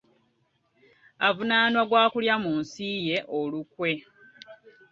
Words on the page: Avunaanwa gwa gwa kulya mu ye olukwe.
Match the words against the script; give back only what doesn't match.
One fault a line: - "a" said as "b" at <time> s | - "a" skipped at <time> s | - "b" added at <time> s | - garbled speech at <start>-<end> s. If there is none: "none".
- "gwa" skipped at 2.0 s
- "nsi" added at 2.6 s